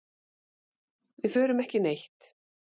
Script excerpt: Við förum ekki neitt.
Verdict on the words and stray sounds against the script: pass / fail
pass